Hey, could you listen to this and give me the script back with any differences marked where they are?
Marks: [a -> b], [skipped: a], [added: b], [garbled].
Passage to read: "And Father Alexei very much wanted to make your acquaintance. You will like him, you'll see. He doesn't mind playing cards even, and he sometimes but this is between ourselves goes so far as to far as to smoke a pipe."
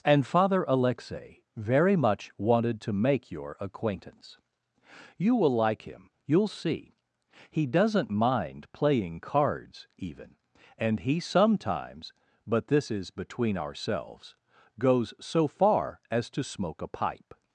"And Father Alexei very much wanted to make your acquaintance. You will like him, you'll see. He doesn't mind playing cards even, and he sometimes but this is between ourselves goes so far as to [skipped: far as to] smoke a pipe."